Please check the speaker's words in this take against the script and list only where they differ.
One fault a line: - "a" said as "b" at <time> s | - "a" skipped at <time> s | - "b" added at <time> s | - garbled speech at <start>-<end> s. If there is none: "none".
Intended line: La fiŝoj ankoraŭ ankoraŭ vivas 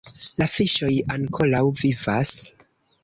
- "ankoraŭ" skipped at 1.6 s